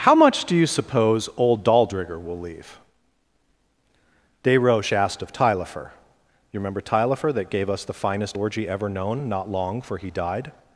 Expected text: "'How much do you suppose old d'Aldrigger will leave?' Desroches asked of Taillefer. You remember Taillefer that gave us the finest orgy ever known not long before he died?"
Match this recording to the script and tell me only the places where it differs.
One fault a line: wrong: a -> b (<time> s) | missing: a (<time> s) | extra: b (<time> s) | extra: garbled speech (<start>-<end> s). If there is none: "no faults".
wrong: before -> for (9.8 s)